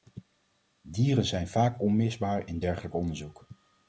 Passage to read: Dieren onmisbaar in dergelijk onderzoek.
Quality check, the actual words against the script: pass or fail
fail